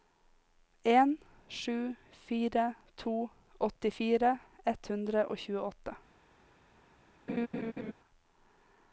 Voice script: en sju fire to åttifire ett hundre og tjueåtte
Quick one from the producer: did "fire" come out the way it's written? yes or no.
yes